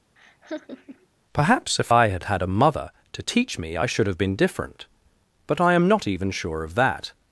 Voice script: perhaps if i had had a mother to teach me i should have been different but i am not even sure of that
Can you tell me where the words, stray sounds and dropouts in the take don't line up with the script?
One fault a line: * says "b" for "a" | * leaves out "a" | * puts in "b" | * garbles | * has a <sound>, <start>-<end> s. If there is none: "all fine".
* has a laugh, 0.2-1.1 s